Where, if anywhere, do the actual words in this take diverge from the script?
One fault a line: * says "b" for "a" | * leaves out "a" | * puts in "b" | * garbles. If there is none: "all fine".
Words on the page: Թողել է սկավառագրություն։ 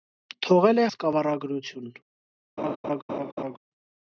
all fine